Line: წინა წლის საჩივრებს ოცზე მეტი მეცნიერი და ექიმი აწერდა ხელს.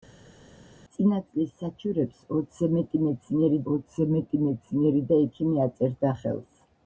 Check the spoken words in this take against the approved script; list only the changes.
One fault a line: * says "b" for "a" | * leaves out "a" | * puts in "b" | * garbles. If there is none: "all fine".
* puts in "ოცზე მეტი მეცნიერი"